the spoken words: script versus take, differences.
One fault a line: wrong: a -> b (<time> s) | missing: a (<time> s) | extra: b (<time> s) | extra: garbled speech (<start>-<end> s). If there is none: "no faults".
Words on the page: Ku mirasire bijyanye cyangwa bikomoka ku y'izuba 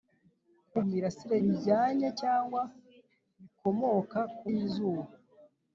no faults